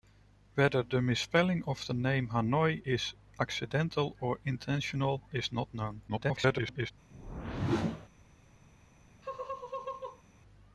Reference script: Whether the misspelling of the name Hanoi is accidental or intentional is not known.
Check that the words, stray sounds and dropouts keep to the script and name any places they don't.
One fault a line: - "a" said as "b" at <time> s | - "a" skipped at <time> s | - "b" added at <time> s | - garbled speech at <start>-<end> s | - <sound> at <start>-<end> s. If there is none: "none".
- garbled speech at 6.1-6.9 s
- whoosh at 7.1-8.1 s
- laugh at 9.2-10.2 s